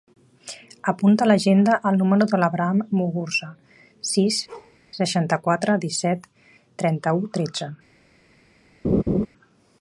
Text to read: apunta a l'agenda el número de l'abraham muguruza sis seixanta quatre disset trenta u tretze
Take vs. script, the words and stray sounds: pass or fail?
fail